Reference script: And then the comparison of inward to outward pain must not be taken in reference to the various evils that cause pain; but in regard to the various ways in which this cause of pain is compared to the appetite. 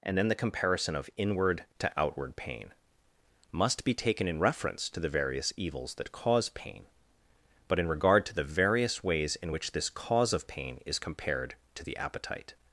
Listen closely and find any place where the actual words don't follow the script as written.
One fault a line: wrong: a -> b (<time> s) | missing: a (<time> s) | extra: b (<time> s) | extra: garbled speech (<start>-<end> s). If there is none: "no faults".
missing: not (3.8 s)